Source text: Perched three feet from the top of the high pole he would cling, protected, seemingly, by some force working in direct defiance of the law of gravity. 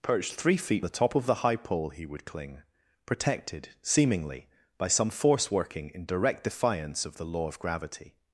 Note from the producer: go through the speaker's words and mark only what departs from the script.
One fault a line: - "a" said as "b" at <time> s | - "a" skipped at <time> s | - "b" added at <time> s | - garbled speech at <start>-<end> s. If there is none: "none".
- "from" skipped at 0.8 s